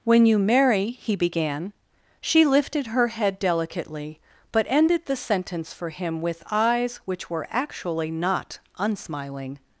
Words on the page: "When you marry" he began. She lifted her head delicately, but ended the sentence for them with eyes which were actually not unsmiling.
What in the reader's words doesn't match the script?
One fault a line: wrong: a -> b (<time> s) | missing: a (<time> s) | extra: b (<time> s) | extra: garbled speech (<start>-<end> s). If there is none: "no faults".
wrong: them -> him (5.9 s)